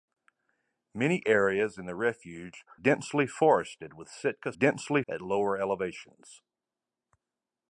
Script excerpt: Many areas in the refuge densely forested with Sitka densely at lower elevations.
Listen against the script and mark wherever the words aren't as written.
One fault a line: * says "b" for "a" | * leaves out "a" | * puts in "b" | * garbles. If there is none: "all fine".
all fine